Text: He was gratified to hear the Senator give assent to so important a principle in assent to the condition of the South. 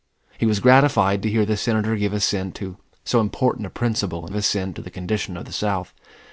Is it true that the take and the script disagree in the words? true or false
false